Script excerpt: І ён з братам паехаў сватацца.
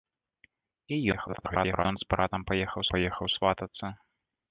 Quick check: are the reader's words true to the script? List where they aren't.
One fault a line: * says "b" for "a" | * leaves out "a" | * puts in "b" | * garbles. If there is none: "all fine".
* garbles
* puts in "паехаў"